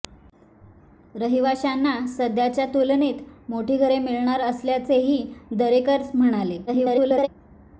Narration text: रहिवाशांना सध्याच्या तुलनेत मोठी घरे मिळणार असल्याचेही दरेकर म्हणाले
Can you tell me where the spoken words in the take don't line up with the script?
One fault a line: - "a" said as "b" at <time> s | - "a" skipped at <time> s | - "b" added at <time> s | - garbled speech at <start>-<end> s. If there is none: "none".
- garbled speech at 6.7-7.3 s